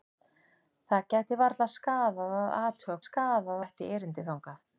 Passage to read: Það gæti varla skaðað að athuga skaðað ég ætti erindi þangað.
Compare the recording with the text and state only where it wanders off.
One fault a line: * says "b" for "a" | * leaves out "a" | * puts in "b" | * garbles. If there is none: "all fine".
all fine